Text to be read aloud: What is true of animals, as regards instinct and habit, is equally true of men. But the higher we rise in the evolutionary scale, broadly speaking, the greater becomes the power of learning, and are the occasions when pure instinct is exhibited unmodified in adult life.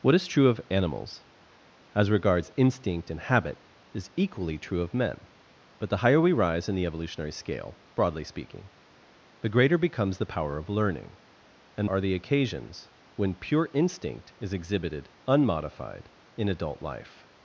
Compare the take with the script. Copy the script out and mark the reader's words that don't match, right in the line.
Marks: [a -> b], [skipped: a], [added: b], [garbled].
What is true of animals, as regards instinct and habit, is equally true of men. But the higher we rise in the evolutionary scale, broadly speaking, the greater becomes the power of learning, and are the occasions when pure instinct is exhibited unmodified in adult life.